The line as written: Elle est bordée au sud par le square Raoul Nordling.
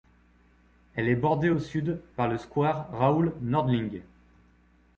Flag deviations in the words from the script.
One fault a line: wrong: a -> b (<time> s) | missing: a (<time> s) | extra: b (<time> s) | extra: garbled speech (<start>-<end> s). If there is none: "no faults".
no faults